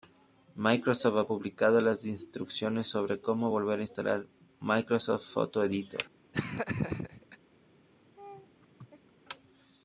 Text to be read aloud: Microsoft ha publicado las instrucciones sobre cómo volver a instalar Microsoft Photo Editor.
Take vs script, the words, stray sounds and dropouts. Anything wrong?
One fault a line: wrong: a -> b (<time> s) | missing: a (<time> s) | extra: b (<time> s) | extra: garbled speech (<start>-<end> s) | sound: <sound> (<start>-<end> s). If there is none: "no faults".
sound: laugh (6.3-7.4 s)
sound: laugh (8.2-9.1 s)